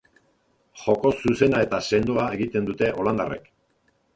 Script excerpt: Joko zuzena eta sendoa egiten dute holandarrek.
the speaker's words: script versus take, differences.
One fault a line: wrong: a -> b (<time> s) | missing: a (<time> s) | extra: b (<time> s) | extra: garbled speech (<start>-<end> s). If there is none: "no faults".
no faults